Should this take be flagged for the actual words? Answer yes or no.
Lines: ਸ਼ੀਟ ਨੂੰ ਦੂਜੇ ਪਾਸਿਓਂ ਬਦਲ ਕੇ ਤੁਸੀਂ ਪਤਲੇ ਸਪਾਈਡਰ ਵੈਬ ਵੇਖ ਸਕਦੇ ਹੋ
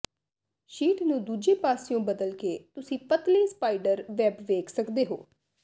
no